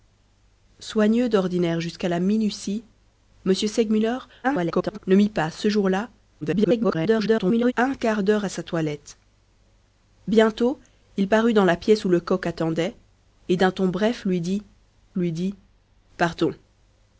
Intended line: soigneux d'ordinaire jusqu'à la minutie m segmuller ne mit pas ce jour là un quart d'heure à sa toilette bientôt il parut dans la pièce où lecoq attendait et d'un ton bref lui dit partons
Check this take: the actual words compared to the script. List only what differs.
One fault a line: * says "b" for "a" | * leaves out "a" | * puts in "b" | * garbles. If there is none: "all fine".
* garbles
* garbles
* puts in "lui dit"